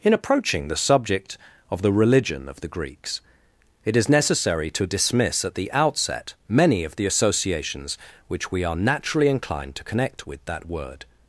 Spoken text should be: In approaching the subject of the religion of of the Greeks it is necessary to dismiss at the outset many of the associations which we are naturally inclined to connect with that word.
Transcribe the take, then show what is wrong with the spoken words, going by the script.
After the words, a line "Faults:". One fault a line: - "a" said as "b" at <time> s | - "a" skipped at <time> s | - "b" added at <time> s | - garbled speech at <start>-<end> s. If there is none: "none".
In approaching the subject of the religion of the Greeks it is necessary to dismiss at the outset many of the associations which we are naturally inclined to connect with that word.
Faults:
- "of" skipped at 2.6 s